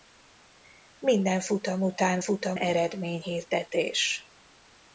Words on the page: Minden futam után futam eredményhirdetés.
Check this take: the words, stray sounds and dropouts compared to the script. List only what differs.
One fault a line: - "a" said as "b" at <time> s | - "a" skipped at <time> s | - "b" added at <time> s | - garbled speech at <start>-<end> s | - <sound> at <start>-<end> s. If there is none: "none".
none